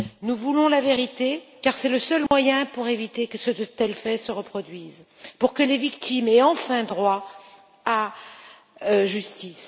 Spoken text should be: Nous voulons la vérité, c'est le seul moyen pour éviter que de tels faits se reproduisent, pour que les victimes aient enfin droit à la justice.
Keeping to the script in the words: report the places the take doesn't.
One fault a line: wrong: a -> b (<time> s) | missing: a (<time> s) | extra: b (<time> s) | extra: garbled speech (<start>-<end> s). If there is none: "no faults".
extra: car (1.6 s)